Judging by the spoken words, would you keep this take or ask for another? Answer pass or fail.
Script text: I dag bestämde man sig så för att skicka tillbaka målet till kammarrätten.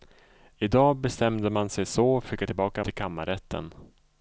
fail